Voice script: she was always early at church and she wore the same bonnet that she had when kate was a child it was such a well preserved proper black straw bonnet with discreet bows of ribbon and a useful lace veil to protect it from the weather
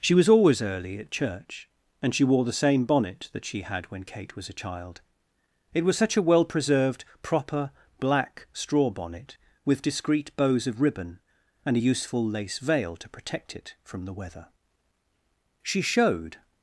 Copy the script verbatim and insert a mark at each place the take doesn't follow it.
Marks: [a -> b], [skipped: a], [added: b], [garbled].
she was always early at church and she wore the same bonnet that she had when kate was a child it was such a well preserved proper black straw bonnet with discreet bows of ribbon and a useful lace veil to protect it from the weather [added: she showed]